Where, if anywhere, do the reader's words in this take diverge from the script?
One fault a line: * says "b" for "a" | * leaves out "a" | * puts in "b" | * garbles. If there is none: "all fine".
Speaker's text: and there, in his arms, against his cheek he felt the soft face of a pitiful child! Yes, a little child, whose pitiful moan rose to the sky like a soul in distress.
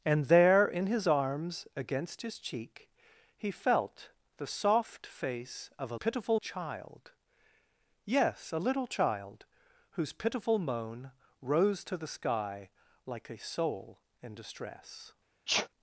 all fine